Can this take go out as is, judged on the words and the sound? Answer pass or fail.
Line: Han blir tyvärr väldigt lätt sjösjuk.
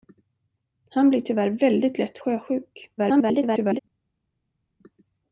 fail